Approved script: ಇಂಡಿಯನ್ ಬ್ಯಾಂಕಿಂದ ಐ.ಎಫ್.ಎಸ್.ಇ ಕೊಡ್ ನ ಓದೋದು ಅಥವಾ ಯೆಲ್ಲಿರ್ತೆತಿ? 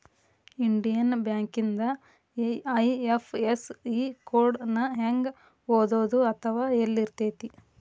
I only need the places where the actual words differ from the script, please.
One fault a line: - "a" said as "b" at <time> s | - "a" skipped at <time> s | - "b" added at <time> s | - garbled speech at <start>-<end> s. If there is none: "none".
- "ಹೆಂಗ" added at 5.0 s